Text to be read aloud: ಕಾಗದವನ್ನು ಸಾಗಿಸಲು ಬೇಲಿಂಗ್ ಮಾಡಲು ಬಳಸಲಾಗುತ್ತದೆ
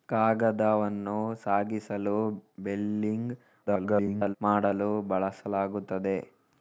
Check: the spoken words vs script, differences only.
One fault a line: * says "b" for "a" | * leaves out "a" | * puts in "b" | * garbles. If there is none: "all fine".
* garbles